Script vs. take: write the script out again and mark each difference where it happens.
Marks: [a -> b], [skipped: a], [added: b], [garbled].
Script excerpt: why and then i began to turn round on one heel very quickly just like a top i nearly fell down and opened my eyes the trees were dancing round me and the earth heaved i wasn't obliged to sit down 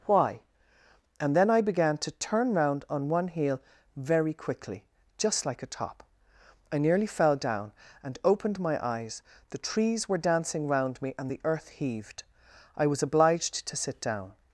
why and then i began to turn round on one heel very quickly just like a top i nearly fell down and opened my eyes the trees were dancing round me and the earth heaved i [wasn't -> was] obliged to sit down